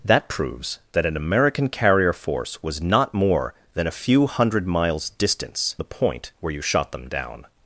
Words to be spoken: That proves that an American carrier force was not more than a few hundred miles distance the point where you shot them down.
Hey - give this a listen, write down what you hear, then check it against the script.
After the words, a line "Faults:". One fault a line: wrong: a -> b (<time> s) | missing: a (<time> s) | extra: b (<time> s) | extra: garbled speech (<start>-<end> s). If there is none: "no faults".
That proves that an American carrier force was not more than a few hundred miles distance the point where you shot them down.
Faults:
no faults